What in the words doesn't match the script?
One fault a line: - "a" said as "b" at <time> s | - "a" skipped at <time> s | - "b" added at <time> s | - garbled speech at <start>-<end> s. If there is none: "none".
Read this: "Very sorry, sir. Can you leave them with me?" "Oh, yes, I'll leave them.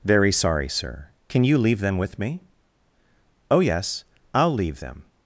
none